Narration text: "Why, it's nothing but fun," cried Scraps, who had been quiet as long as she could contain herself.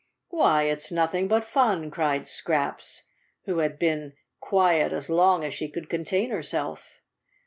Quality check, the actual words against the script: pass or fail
pass